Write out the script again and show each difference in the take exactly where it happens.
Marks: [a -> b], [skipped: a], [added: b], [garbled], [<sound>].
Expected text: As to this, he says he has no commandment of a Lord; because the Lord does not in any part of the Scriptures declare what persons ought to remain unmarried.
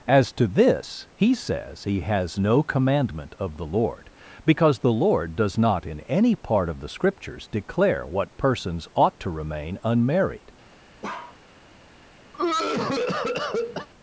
As to this, he says he has no commandment of [a -> the] Lord; because the Lord does not in any part of the Scriptures declare what persons ought to remain unmarried. [bark] [cough]